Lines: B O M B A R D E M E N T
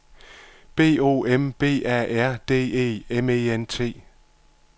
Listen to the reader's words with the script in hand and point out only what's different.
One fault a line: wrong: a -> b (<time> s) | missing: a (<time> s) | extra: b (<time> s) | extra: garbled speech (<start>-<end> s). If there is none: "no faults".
no faults